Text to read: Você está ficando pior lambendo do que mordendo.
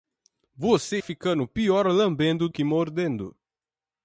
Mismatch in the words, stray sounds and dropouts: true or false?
true